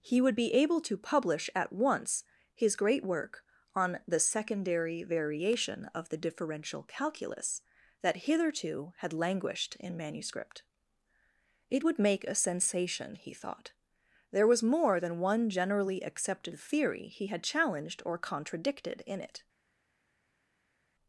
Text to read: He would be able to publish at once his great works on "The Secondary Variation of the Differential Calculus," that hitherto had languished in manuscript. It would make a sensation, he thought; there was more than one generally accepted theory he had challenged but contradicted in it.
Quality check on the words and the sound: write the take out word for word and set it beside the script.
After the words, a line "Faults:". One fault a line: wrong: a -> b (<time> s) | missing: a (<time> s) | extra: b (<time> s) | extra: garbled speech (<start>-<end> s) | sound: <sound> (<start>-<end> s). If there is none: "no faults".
He would be able to publish at once his great work on "The Secondary Variation of the Differential Calculus," that hitherto had languished in manuscript. It would make a sensation, he thought; there was more than one generally accepted theory he had challenged or contradicted in it.
Faults:
wrong: works -> work (3.0 s)
wrong: but -> or (18.0 s)